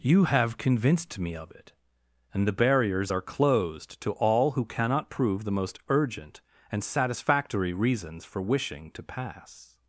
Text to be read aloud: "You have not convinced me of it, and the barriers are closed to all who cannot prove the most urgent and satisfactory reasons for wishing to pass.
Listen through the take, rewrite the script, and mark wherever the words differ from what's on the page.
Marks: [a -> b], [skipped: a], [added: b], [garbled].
"You have [skipped: not] convinced me of it, and the barriers are closed to all who cannot prove the most urgent and satisfactory reasons for wishing to pass.